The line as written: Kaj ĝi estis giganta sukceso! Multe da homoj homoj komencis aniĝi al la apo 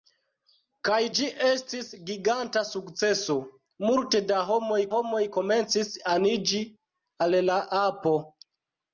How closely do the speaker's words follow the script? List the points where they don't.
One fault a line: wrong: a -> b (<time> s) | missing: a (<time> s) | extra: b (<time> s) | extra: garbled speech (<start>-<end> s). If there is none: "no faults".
no faults